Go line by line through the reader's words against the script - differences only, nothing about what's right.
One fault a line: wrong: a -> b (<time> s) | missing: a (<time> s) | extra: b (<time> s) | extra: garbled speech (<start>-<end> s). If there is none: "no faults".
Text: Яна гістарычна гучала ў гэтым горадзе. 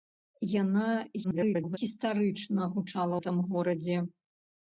extra: garbled speech (1.2-1.8 s)
missing: ў (3.2 s)